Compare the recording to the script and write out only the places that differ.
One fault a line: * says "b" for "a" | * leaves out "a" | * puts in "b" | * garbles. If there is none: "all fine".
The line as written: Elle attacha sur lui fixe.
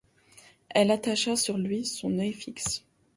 * puts in "son œil"